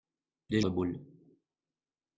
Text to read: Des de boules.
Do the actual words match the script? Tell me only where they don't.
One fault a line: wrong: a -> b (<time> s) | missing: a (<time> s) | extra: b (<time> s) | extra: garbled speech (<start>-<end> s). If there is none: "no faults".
no faults